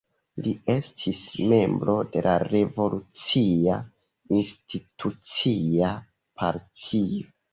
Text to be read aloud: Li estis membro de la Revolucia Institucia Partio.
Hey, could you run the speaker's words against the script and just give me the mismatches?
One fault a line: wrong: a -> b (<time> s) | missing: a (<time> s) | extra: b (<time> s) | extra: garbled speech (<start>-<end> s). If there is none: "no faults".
no faults